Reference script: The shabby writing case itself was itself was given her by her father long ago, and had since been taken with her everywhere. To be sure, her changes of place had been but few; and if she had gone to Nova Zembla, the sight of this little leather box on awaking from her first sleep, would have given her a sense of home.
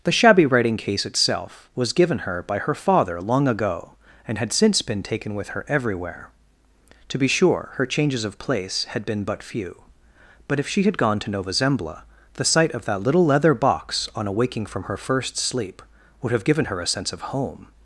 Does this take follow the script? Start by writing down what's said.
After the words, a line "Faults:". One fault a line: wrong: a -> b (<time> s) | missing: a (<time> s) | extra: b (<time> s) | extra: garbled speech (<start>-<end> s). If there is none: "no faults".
The shabby writing case itself was given her by her father long ago, and had since been taken with her everywhere. To be sure, her changes of place had been but few; but if she had gone to Nova Zembla, the sight of that little leather box on awaking from her first sleep, would have given her a sense of home.
Faults:
missing: itself was (1.9 s)
wrong: and -> but (10.5 s)
wrong: this -> that (12.8 s)